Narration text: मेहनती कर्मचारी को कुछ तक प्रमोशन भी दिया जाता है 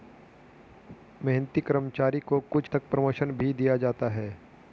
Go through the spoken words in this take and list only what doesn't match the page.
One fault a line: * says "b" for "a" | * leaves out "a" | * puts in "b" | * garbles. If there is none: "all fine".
all fine